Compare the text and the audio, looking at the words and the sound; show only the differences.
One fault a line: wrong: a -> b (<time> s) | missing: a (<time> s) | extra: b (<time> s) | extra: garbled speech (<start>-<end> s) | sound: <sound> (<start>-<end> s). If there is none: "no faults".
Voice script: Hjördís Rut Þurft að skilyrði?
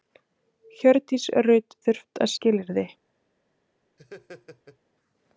sound: laugh (4.0-4.8 s)